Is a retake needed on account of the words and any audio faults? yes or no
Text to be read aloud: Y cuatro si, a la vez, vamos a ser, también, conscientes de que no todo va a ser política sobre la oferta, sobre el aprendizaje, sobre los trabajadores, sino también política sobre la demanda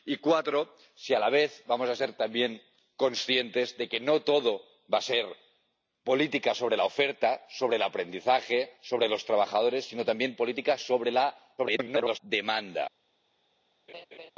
yes